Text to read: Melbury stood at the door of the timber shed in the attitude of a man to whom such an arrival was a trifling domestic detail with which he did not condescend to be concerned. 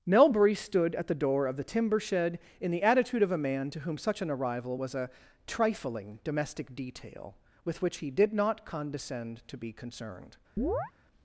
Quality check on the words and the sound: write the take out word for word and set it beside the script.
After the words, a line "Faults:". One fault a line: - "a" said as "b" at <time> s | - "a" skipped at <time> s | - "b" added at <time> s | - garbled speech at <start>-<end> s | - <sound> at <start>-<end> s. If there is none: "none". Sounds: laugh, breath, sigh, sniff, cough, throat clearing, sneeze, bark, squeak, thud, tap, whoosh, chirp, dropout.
Melbury stood at the door of the timber shed in the attitude of a man to whom such an arrival was a trifling domestic detail with which he did not condescend to be concerned.
Faults:
- chirp at 10.6-10.9 s